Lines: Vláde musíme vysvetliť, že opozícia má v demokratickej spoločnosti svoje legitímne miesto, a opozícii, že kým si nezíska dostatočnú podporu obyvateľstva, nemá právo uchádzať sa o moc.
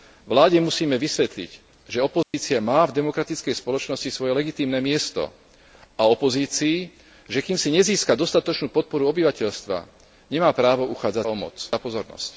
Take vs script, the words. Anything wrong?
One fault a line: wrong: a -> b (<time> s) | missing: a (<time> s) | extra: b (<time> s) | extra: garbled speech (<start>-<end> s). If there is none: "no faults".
missing: sa (11.3 s)